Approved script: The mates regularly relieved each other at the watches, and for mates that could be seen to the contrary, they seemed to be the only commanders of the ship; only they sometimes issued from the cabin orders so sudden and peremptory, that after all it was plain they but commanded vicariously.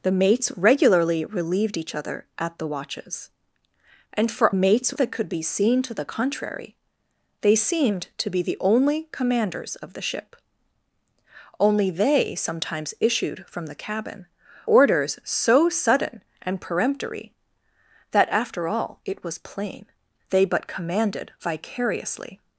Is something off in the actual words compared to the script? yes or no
no